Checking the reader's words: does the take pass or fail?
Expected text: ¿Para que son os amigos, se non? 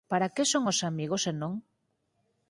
pass